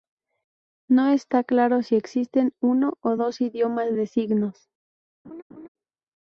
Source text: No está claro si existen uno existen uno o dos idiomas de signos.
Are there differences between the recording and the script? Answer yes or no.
yes